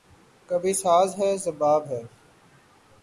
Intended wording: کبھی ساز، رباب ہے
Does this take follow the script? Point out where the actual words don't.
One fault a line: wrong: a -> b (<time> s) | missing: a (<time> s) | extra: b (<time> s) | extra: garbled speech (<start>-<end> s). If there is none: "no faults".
extra: ہے (1.2 s)